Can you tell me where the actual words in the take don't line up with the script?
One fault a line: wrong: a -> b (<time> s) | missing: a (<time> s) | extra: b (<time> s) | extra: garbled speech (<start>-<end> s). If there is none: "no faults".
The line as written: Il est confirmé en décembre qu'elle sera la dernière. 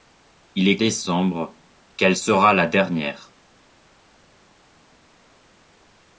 missing: confirmé en (0.8 s)